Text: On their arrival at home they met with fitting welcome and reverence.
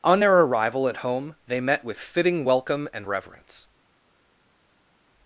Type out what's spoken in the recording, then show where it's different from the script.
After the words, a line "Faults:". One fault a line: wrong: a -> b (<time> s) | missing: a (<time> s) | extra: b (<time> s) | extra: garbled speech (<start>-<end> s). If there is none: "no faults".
On their arrival at home they met with fitting welcome and reverence.
Faults:
no faults